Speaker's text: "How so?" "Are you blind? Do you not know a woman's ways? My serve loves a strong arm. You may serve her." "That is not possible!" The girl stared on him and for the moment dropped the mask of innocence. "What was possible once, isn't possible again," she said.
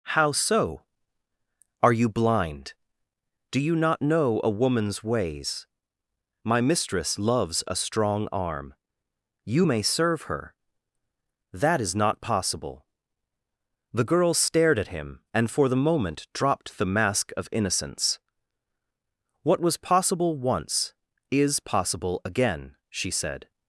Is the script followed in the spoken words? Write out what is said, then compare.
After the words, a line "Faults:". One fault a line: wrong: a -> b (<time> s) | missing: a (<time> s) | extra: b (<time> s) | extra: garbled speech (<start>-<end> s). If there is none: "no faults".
"How so?" "Are you blind? Do you not know a woman's ways? My mistress loves a strong arm. You may serve her." "That is not possible!" The girl stared at him and for the moment dropped the mask of innocence. "What was possible once, is possible again," she said.
Faults:
wrong: serve -> mistress (6.6 s)
wrong: on -> at (14.8 s)
wrong: isn't -> is (21.3 s)